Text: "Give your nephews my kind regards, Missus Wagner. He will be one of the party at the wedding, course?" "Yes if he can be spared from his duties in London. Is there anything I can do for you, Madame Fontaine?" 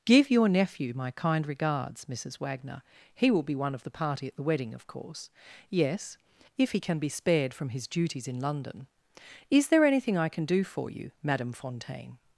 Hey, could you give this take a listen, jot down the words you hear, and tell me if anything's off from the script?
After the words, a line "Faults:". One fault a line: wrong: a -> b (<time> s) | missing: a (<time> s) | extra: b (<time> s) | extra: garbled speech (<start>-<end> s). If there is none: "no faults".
"Give your nephew my kind regards, Missus Wagner. He will be one of the party at the wedding, of course?" "Yes if he can be spared from his duties in London. Is there anything I can do for you, Madame Fontaine?"
Faults:
wrong: nephews -> nephew (0.5 s)
extra: of (4.7 s)